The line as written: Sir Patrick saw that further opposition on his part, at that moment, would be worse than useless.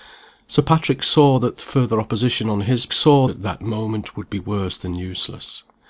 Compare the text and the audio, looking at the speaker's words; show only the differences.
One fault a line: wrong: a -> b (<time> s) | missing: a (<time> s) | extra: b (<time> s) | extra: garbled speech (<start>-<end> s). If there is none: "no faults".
wrong: part -> saw (2.9 s)